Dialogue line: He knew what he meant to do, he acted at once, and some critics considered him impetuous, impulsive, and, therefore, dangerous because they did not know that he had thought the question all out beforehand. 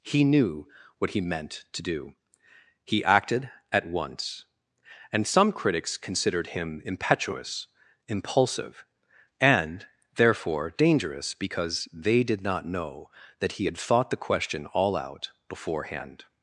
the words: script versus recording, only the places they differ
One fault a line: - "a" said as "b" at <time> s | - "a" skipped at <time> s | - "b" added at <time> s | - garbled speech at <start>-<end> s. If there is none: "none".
none